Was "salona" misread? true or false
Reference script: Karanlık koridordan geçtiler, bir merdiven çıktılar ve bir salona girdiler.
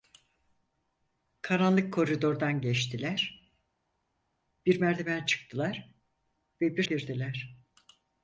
true